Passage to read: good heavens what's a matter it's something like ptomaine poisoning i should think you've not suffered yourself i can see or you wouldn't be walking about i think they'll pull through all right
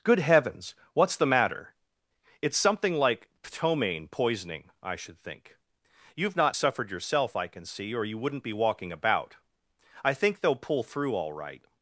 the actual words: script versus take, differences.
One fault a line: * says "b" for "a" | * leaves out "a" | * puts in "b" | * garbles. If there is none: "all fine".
* says "the" for "a"